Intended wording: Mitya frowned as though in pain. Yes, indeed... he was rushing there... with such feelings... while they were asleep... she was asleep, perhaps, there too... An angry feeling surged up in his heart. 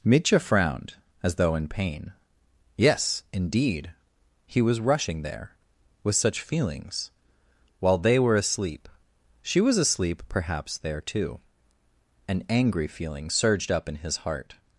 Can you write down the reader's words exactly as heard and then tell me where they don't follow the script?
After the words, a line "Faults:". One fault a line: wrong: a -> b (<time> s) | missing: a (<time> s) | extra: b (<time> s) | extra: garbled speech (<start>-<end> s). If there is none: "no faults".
Mitya frowned as though in pain. Yes, indeed... he was rushing there... with such feelings... while they were asleep... she was asleep, perhaps, there too... An angry feeling surged up in his heart.
Faults:
no faults